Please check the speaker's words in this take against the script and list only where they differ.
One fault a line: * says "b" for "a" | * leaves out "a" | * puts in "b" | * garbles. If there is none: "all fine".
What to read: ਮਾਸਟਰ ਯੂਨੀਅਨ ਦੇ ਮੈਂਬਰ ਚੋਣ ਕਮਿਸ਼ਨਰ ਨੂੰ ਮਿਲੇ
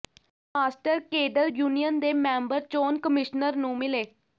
* puts in "ਕੇਡਰ"